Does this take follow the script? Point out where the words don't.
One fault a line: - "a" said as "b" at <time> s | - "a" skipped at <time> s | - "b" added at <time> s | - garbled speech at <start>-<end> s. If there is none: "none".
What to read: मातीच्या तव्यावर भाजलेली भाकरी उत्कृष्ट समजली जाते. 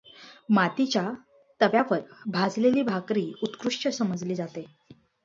none